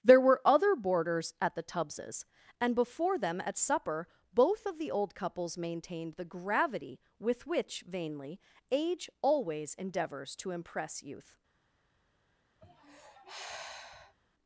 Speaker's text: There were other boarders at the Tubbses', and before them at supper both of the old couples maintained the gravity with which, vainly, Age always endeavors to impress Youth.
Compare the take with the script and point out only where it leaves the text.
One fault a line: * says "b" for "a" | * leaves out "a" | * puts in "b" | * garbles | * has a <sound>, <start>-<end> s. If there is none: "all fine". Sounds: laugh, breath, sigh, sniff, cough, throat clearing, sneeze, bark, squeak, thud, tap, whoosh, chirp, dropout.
* has a sigh, 12.6-14.2 s